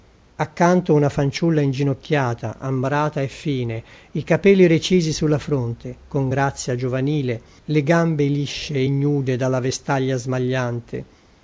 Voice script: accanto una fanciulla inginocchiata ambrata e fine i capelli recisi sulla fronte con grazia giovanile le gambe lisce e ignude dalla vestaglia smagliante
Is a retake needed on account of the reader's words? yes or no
no